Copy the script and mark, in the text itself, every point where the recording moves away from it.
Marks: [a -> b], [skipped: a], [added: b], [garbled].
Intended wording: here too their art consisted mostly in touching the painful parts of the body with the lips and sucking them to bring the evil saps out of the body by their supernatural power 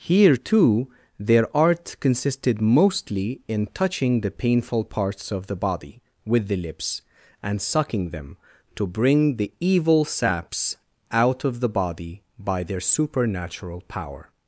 here too their art consisted mostly in touching the painful parts of the body with the lips and sucking them to bring the evil saps out of the body by their supernatural power